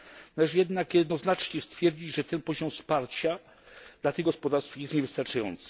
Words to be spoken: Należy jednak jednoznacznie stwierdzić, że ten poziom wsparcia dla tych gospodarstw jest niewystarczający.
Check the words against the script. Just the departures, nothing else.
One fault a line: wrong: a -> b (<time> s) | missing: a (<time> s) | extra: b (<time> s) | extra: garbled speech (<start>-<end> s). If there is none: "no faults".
no faults